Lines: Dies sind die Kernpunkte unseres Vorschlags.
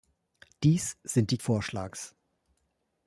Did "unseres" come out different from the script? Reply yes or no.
yes